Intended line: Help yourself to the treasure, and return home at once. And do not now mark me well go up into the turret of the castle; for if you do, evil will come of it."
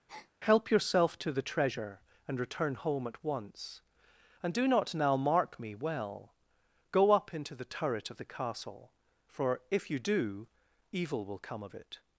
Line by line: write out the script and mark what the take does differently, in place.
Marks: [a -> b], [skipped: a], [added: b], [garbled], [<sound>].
[breath] Help yourself to the treasure, and return home at once. And do not now mark me well go up into the turret of the castle; for if you do, evil will come of it."